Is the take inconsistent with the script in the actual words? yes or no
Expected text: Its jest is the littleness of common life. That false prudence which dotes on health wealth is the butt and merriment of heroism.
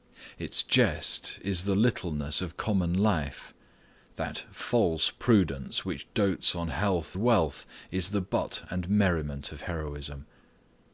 no